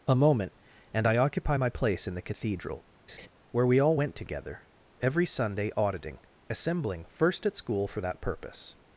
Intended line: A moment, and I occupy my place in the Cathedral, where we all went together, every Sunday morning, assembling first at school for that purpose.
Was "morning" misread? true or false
true